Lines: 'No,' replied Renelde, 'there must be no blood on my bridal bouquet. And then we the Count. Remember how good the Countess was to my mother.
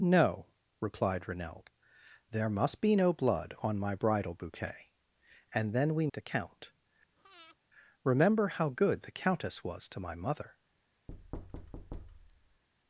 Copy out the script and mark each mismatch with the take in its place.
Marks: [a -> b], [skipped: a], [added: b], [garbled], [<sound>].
'No,' replied Renelde, 'there must be no blood on my bridal bouquet. And then we the Count. [breath] Remember how good the Countess was to my mother. [thud]